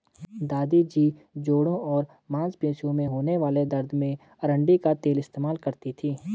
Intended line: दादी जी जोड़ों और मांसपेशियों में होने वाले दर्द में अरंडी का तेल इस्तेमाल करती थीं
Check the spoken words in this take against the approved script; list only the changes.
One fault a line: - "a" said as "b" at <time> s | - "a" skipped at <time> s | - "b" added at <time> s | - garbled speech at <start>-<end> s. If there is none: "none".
none